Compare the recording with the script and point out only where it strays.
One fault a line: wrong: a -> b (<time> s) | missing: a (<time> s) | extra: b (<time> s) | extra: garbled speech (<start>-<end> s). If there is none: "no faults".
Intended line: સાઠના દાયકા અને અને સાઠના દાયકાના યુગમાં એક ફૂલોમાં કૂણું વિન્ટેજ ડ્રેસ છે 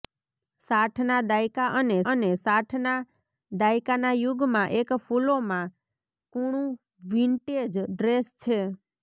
no faults